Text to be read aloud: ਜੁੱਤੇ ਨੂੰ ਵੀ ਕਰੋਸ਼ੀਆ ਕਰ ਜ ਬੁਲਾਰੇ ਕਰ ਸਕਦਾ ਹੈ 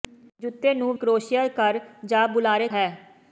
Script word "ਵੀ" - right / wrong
wrong